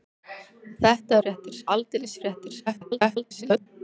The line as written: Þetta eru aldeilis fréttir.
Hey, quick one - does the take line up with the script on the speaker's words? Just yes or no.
no